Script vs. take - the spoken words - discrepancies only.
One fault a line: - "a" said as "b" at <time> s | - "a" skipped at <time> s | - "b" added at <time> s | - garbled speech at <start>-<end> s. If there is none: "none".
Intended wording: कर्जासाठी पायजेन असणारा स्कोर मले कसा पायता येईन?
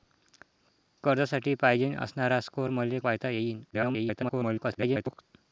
- "कसा" skipped at 3.0 s
- garbled speech at 3.7-5.2 s